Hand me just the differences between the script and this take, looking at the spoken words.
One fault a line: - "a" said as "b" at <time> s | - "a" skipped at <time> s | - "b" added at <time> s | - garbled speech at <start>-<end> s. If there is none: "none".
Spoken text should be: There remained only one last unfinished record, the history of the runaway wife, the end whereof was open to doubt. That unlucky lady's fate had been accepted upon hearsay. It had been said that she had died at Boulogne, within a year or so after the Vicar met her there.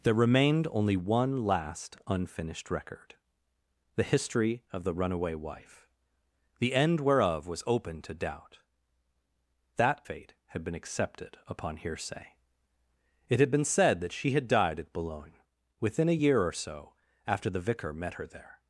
- "unlucky lady's" skipped at 10.0 s